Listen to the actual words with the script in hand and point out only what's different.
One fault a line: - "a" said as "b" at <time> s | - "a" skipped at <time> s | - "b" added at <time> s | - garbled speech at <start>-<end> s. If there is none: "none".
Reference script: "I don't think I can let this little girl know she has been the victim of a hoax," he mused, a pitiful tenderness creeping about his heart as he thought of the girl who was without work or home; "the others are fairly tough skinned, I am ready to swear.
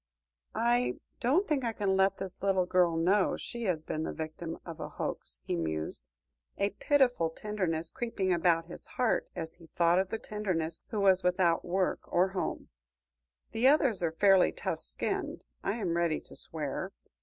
- "girl" said as "tenderness" at 10.2 s